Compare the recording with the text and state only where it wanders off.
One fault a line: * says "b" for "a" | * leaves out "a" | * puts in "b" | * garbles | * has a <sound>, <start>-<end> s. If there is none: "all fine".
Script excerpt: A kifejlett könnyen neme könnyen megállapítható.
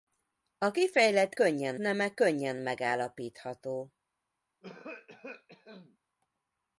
* has a cough, 4.6-6.0 s